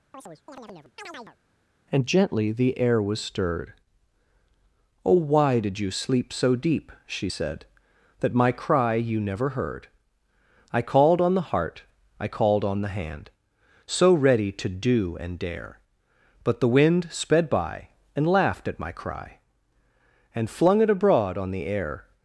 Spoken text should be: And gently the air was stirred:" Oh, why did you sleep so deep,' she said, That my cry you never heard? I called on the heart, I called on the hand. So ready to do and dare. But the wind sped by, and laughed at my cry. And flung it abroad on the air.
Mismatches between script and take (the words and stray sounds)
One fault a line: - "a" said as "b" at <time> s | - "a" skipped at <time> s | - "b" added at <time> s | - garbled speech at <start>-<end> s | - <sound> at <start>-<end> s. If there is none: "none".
- chirp at 0.1-1.4 s